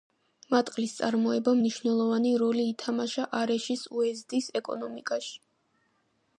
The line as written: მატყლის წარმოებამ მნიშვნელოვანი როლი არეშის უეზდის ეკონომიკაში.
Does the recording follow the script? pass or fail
fail